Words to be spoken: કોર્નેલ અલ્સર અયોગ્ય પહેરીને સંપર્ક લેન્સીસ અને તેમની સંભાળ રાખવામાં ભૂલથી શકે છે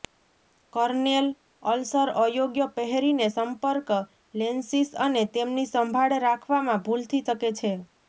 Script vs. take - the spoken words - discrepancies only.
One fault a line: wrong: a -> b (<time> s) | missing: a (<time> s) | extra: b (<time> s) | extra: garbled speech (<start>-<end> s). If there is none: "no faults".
no faults